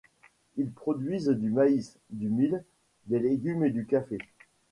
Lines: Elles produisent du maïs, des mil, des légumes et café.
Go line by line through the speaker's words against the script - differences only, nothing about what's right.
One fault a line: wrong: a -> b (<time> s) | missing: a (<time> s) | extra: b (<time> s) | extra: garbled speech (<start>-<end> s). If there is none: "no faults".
wrong: Elles -> Ils (0.6 s)
wrong: des -> du (2.1 s)
extra: du (3.7 s)